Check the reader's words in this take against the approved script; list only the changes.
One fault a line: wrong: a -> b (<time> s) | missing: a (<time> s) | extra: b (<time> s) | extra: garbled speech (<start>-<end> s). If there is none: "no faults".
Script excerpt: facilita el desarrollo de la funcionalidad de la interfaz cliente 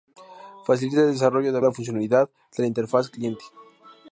no faults